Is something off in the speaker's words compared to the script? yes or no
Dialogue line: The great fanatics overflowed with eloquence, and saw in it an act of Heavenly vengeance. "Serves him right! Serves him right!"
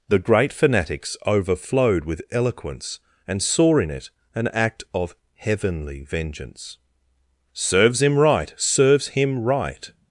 no